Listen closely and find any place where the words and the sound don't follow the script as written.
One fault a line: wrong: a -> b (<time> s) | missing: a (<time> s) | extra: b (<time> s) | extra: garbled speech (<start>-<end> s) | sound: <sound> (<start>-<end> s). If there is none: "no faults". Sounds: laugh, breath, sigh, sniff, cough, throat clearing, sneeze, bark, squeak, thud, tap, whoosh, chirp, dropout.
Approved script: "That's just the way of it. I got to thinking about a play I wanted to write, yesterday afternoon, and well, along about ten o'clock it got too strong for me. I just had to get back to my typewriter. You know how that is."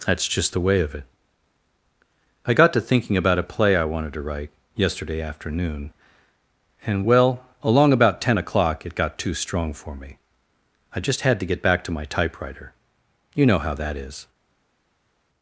no faults